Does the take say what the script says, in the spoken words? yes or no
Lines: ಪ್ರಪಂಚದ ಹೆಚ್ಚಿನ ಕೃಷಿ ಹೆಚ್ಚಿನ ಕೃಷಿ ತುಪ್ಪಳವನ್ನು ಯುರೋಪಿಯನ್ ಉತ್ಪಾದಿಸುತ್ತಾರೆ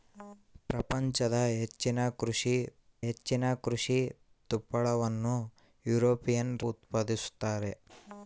yes